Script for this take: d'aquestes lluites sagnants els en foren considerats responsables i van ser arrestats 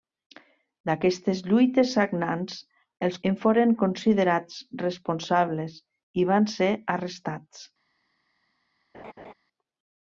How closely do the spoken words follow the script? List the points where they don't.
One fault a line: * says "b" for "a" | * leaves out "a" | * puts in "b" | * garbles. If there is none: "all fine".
all fine